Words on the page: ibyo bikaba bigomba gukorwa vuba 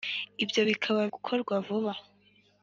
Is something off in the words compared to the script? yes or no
yes